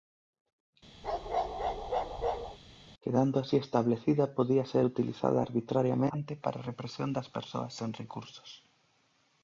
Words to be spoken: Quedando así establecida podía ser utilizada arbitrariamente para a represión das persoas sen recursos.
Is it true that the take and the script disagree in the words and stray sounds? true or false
true